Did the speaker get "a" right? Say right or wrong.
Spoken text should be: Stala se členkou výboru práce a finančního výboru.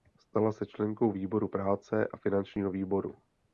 right